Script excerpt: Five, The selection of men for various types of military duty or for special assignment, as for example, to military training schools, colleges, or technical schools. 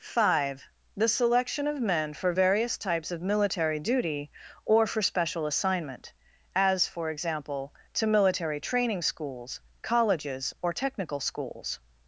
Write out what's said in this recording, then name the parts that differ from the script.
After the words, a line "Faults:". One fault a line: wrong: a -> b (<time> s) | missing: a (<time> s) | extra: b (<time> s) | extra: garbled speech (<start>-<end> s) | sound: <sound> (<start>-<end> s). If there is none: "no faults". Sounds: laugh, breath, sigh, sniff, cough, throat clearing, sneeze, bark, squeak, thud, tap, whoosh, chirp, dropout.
Five, The selection of men for various types of military duty or for special assignment, as for example, to military training schools, colleges, or technical schools.
Faults:
no faults